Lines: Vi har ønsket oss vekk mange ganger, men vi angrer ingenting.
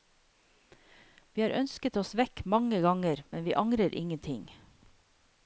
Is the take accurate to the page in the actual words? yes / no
yes